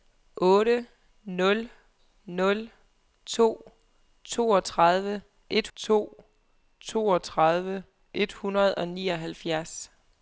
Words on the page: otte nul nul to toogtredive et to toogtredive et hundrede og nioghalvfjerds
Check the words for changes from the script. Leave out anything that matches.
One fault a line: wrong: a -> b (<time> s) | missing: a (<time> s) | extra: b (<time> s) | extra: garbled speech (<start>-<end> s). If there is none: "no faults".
no faults